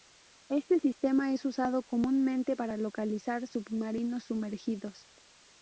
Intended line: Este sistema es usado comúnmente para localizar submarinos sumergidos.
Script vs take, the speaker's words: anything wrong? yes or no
no